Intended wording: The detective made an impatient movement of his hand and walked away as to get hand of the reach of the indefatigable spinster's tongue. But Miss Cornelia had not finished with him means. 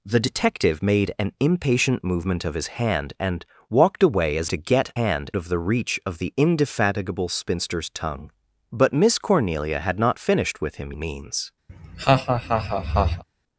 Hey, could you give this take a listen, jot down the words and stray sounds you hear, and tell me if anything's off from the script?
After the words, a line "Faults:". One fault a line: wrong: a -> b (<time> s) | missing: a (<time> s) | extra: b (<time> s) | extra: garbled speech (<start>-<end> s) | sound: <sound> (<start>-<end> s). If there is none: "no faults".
The detective made an impatient movement of his hand and walked away as to get hand of the reach of the indefatigable spinster's tongue. But Miss Cornelia had not finished with him means.
Faults:
sound: laugh (11.7-13.2 s)